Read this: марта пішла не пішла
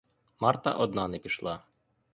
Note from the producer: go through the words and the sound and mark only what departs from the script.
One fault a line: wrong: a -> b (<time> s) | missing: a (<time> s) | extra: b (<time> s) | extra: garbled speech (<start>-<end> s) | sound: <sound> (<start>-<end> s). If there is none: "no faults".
wrong: пішла -> одна (0.7 s)